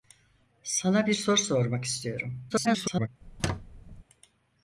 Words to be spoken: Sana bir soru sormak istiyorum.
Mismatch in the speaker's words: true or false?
true